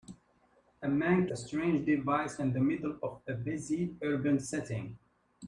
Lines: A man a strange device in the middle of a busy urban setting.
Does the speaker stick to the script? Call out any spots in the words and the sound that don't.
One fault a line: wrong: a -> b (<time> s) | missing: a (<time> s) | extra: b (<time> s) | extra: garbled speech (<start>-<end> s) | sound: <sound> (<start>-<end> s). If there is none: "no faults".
no faults